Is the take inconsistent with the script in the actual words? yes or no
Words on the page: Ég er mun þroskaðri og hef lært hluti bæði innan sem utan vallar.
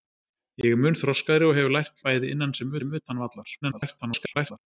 yes